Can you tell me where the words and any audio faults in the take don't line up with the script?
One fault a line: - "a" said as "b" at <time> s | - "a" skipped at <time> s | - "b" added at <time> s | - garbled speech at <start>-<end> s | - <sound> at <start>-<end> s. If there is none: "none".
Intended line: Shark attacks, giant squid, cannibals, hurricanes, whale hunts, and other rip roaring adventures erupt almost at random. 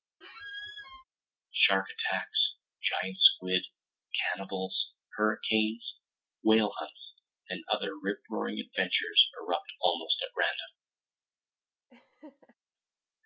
- squeak at 0.2-1.0 s
- laugh at 11.9-12.5 s